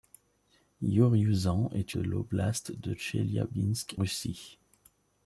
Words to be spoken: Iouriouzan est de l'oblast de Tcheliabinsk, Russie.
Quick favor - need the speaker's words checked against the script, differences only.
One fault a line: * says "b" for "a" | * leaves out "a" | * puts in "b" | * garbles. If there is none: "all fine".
all fine